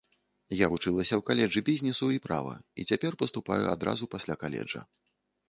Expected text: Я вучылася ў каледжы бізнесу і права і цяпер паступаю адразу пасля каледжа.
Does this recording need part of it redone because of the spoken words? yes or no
no